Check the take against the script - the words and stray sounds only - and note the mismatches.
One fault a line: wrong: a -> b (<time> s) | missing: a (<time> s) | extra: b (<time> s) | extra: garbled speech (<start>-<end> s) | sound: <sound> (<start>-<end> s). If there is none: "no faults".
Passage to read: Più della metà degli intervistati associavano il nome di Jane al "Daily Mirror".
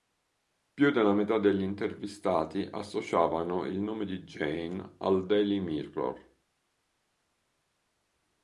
no faults